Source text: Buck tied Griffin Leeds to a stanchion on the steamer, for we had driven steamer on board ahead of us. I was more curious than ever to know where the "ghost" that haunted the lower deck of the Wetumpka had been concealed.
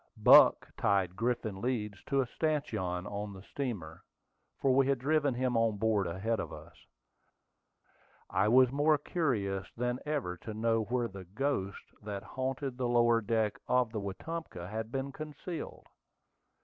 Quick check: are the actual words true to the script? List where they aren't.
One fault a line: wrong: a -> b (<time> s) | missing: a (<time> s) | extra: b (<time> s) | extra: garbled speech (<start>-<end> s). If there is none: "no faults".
wrong: steamer -> him (5.3 s)